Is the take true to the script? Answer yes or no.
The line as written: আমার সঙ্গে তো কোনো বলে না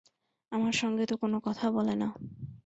no